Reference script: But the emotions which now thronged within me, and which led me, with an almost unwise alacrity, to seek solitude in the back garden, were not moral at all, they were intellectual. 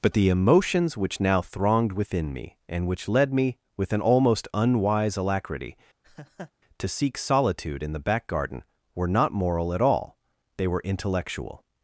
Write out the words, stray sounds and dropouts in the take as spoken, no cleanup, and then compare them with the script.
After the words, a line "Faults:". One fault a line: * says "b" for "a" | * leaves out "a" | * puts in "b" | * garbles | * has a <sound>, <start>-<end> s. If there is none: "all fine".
But the emotions which now thronged within me, and which led me, with an almost unwise alacrity, to seek solitude in the back garden, were not moral at all, they were intellectual.
Faults:
* has a laugh, 6.0-6.5 s